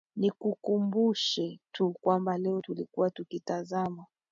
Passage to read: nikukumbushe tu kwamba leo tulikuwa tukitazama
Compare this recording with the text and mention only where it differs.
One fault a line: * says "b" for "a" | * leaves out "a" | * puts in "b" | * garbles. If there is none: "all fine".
all fine